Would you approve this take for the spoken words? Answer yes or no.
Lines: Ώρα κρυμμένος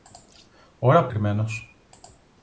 yes